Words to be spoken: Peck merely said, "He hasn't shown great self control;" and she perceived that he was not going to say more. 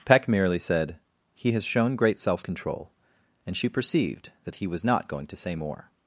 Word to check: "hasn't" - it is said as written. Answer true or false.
false